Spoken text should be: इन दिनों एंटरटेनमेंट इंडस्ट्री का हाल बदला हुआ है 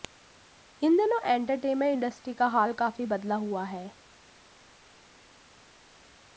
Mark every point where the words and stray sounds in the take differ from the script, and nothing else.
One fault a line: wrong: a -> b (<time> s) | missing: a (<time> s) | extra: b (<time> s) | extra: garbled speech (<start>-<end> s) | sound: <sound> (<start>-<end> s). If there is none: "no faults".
extra: काफी (2.7 s)